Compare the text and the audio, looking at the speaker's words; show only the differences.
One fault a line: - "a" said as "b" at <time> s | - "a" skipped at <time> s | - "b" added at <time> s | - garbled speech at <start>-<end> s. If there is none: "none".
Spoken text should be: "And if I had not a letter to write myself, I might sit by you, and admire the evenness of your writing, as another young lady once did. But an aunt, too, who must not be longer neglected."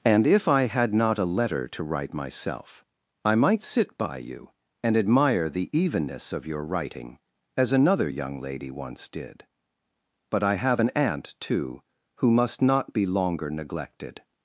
- "I have" added at 10.4 s